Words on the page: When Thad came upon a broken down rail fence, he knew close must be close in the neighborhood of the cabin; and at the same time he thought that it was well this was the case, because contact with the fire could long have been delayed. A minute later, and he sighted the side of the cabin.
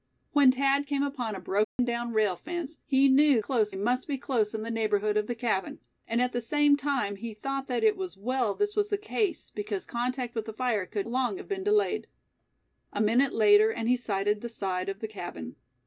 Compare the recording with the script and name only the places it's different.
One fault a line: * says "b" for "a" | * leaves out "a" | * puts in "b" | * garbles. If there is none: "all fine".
all fine